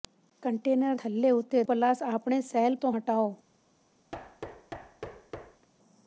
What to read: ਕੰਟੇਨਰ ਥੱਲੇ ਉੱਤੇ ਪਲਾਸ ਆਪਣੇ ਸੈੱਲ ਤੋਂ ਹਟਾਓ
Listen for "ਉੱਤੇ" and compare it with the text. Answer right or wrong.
right